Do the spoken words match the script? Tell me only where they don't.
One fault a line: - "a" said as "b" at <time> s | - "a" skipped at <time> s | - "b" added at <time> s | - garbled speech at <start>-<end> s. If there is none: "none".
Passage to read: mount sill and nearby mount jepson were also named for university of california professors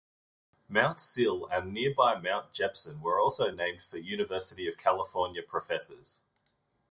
none